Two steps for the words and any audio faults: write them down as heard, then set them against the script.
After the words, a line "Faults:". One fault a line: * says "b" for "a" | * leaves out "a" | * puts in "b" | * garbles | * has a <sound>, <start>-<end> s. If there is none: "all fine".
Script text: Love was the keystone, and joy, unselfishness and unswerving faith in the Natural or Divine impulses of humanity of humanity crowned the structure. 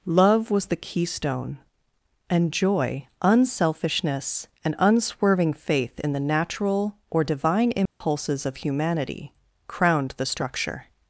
Love was the keystone, and joy, unselfishness and unswerving faith in the Natural or Divine impulses of humanity crowned the structure.
Faults:
* has a dropout, 7.9-8.0 s
* leaves out "of humanity"